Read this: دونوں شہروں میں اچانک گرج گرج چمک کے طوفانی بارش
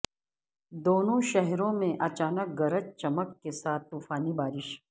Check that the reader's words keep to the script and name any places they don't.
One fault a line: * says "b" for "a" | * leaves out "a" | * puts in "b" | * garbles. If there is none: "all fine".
* leaves out "گرج"
* puts in "ساتھ"